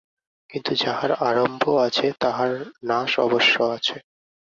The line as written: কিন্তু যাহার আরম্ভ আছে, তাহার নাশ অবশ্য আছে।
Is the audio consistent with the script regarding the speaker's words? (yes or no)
yes